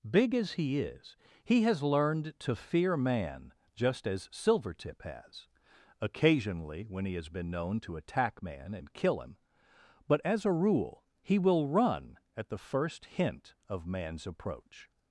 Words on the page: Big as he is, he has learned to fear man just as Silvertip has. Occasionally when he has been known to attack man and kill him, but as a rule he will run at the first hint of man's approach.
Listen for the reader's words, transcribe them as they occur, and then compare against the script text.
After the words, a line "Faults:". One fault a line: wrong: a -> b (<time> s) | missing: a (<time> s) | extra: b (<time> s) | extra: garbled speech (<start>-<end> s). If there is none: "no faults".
Big as he is, he has learned to fear man just as Silvertip has. Occasionally when he has been known to attack man and kill him, but as a rule he will run at the first hint of man's approach.
Faults:
no faults